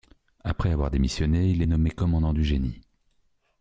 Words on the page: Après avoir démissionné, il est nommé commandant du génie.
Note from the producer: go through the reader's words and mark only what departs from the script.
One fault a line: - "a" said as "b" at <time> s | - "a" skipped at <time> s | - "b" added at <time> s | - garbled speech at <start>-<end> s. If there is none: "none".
none